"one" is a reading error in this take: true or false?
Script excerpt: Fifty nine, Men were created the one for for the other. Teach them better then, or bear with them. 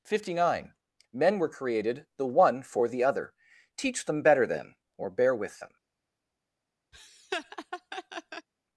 false